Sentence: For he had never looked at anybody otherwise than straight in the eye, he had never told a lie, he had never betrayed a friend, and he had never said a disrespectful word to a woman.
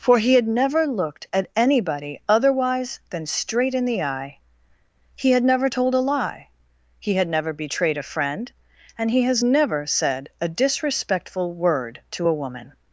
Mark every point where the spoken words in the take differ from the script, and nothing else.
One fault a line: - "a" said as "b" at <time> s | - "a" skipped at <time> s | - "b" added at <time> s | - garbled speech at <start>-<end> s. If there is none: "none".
- "had" said as "has" at 9.2 s